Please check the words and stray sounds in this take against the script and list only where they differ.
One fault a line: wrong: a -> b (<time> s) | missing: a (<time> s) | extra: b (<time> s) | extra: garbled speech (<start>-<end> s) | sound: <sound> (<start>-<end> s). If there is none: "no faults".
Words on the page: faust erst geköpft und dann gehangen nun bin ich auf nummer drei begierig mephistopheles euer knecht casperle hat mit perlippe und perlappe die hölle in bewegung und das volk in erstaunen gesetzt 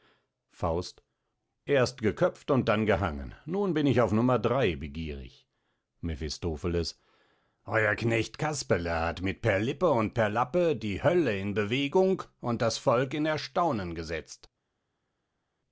no faults